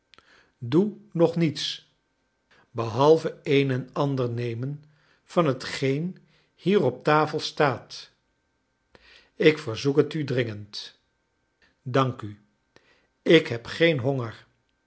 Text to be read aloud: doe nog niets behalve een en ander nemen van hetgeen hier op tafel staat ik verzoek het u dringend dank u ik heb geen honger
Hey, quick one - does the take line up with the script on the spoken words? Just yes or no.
yes